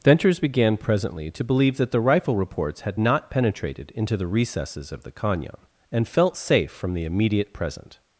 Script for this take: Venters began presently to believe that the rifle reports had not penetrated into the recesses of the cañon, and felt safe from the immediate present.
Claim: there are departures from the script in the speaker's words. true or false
false